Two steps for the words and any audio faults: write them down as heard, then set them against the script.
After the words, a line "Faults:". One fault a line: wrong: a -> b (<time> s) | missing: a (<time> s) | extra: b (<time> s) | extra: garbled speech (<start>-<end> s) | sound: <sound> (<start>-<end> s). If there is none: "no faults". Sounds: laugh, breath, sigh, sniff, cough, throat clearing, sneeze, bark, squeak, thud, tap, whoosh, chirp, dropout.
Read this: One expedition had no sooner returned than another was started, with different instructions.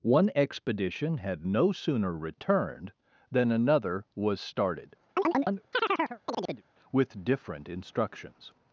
One expedition had no sooner returned than another was started, with different instructions.
Faults:
sound: chirp (5.2-6.6 s)